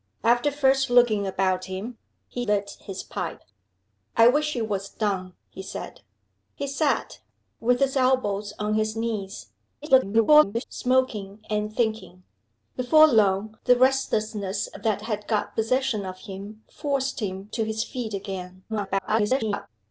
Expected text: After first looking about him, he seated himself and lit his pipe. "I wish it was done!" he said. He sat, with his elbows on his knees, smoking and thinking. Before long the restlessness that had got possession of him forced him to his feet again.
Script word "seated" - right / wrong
wrong